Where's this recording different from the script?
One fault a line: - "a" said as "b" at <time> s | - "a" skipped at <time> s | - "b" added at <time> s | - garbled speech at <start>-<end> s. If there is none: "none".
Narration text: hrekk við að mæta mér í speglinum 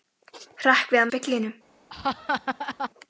- "mæta mér" skipped at 1.1 s